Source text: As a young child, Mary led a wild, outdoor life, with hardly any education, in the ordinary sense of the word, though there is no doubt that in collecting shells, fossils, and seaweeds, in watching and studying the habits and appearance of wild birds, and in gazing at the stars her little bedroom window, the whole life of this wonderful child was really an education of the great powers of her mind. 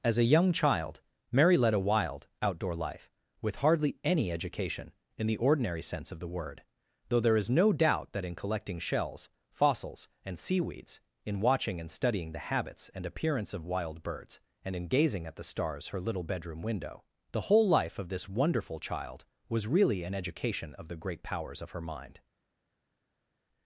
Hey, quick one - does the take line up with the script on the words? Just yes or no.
yes